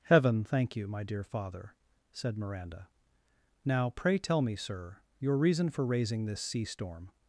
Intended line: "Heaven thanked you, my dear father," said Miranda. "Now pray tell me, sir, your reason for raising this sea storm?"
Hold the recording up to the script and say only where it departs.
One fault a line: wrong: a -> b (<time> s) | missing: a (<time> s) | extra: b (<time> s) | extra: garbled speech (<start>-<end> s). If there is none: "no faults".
wrong: thanked -> thank (0.4 s)